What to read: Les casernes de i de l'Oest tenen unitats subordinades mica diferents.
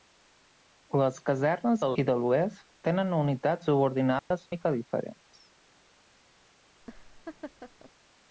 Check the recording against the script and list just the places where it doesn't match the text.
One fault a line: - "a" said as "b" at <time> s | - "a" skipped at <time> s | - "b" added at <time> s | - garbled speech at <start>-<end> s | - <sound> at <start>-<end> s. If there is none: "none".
- dropout at 4.2-4.3 s
- laugh at 6.8-7.9 s